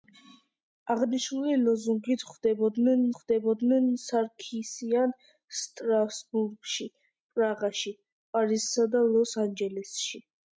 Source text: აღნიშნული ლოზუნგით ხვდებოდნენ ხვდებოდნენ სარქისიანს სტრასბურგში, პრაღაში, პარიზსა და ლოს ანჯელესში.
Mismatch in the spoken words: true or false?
false